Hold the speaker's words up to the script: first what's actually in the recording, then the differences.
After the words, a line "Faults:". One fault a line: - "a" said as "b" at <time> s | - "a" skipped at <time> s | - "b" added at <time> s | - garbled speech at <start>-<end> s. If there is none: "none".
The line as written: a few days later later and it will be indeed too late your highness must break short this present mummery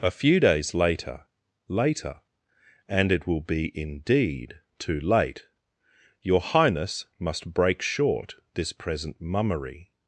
a few days later later and it will be indeed too late your highness must break short this present mummery
Faults:
none